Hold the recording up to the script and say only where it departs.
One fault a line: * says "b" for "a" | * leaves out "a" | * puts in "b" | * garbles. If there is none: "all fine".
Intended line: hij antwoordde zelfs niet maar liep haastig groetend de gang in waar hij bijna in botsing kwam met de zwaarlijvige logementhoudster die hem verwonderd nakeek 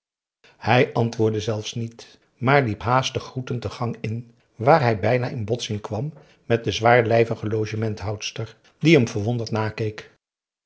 all fine